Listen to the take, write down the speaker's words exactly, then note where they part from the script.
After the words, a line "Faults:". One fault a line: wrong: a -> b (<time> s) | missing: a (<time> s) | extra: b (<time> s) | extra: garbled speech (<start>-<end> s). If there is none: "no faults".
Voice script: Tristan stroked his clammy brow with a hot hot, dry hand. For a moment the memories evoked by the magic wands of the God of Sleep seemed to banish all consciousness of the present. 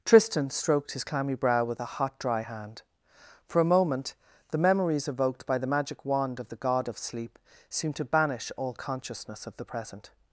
Tristan stroked his clammy brow with a hot, dry hand. For a moment the memories evoked by the magic wand of the God of Sleep seemed to banish all consciousness of the present.
Faults:
missing: hot (2.2 s)
wrong: wands -> wand (6.0 s)